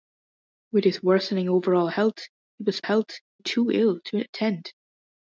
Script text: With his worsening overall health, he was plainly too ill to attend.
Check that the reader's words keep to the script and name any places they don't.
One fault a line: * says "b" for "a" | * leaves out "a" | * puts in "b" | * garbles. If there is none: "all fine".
* says "health" for "plainly"